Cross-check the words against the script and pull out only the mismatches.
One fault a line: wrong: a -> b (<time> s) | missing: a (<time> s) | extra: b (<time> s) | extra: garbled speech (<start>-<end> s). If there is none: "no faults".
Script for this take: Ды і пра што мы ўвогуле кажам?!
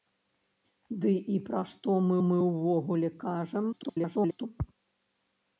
extra: мы (2.3 s)
extra: garbled speech (3.7-4.5 s)